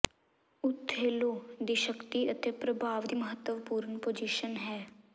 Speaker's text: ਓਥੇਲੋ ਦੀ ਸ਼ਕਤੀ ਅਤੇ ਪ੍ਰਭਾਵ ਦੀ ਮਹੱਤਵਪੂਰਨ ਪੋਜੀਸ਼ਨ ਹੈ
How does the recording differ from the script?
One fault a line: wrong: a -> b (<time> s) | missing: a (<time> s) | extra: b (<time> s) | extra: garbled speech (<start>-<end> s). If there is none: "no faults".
no faults